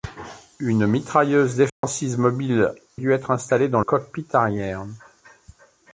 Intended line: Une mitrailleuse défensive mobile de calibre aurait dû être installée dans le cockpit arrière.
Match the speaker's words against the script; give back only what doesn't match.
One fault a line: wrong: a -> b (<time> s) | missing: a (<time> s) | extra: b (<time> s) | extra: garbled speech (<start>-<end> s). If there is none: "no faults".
missing: de calibre aurait (2.7 s)
missing: le (3.8 s)